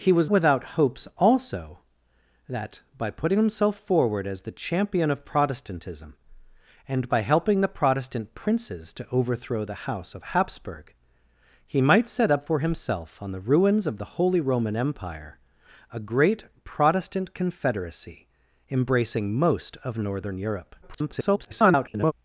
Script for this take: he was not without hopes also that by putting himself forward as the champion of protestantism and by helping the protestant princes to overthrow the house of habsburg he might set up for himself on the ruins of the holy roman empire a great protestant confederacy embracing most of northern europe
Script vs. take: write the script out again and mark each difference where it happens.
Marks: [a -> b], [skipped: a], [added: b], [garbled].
he was [skipped: not] without hopes also that by putting himself forward as the champion of protestantism and by helping the protestant princes to overthrow the house of habsburg he might set up for himself on the ruins of the holy roman empire a great protestant confederacy embracing most of northern europe [garbled]